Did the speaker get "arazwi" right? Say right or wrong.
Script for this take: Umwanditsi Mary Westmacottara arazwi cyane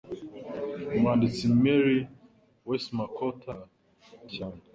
wrong